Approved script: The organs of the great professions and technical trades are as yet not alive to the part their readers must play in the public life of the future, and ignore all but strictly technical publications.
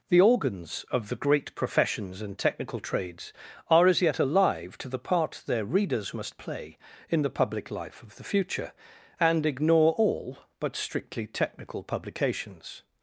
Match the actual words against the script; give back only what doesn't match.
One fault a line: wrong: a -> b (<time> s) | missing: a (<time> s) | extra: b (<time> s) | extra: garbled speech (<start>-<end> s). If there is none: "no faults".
missing: not (4.2 s)